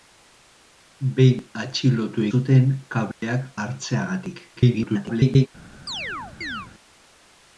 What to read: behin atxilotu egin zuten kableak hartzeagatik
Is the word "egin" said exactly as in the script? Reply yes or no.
no